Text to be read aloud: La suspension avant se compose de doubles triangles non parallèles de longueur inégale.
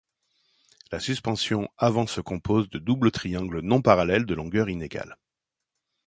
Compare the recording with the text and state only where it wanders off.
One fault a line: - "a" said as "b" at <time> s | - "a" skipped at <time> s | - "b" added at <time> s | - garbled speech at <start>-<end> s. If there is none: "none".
none